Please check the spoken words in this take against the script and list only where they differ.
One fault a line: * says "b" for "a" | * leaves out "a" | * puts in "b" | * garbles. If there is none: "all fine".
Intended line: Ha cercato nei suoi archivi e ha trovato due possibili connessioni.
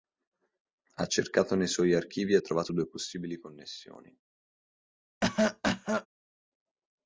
all fine